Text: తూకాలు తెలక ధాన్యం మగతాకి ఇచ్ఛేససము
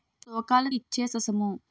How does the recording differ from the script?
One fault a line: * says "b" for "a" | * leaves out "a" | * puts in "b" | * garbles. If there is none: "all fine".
* leaves out "తెలక ధాన్యం మగతాకి"